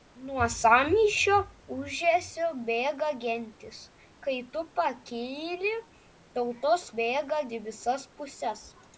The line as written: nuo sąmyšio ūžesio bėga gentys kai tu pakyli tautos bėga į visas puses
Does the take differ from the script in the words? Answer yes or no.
no